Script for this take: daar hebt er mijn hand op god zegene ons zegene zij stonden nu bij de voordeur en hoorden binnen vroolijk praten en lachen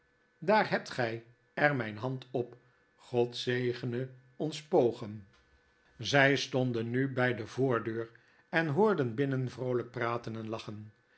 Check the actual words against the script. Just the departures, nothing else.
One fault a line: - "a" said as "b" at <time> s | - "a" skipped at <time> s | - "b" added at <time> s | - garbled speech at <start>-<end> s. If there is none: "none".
- "gij" added at 0.9 s
- "zegene" said as "pogen" at 4.6 s